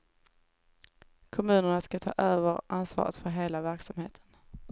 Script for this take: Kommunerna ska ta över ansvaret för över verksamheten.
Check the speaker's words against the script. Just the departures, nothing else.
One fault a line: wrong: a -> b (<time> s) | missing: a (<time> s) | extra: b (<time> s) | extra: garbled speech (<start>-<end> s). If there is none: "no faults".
wrong: över -> hela (3.3 s)